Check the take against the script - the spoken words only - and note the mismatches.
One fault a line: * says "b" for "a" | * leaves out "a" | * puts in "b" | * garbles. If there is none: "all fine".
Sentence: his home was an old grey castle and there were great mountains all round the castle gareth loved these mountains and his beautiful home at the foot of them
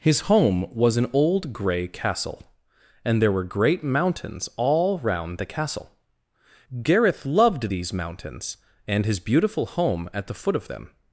all fine